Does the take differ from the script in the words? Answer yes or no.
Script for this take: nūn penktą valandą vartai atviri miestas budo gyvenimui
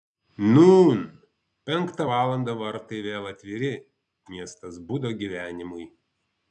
yes